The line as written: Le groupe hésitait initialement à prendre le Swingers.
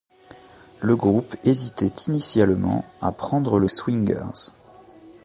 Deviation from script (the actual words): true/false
false